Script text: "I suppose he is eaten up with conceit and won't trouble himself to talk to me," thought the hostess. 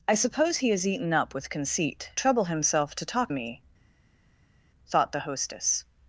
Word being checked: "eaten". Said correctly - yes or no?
yes